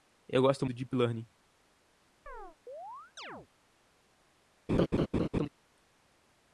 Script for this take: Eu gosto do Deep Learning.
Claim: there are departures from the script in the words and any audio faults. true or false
true